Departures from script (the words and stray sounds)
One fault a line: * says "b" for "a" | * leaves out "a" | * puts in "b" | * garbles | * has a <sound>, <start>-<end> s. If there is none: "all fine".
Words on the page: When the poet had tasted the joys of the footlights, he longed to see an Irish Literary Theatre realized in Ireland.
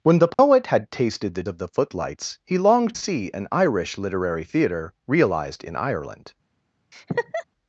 * has a dropout, 0.3-0.4 s
* leaves out "joys"
* leaves out "to"
* has a laugh, 6.9-7.4 s